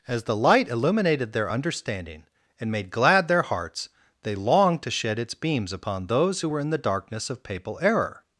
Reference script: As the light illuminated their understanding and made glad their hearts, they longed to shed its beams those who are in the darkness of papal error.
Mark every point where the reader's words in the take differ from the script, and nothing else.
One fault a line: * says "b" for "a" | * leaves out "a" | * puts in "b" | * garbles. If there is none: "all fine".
* puts in "upon"
* says "were" for "are"